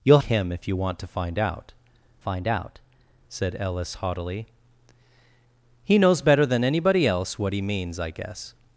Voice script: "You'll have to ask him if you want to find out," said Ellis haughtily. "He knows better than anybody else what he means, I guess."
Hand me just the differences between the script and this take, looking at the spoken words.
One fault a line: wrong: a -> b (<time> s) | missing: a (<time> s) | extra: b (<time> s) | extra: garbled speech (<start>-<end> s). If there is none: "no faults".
missing: have to ask (0.2 s)
extra: find out (2.2 s)